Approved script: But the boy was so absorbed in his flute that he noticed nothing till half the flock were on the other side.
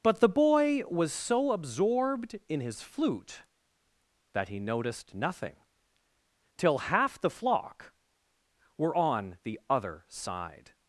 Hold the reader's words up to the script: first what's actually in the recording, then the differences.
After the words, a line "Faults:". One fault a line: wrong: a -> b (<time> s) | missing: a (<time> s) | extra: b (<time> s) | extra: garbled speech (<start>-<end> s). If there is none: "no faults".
But the boy was so absorbed in his flute that he noticed nothing till half the flock were on the other side.
Faults:
no faults